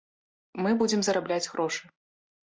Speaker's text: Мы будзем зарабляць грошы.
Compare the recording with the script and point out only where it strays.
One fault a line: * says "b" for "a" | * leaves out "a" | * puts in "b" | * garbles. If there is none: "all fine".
all fine